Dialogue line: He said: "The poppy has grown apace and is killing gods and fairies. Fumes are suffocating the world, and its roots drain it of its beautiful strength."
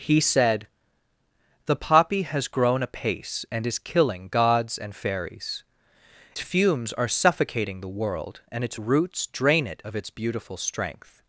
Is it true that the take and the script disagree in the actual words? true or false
false